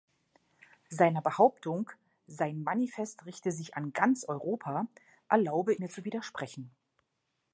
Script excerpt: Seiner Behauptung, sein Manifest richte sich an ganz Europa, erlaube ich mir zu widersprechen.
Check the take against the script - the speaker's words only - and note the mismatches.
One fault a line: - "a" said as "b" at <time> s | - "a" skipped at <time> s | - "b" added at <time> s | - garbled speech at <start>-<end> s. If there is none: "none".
- "ich" skipped at 5.8 s